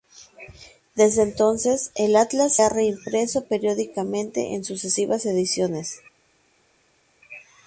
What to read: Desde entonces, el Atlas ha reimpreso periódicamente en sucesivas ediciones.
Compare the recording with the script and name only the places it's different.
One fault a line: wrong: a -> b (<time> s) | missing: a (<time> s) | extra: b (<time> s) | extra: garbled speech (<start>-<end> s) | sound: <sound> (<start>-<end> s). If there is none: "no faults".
no faults